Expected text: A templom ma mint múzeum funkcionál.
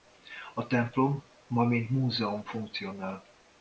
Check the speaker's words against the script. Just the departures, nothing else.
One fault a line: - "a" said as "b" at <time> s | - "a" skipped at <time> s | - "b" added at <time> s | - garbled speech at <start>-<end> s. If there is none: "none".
none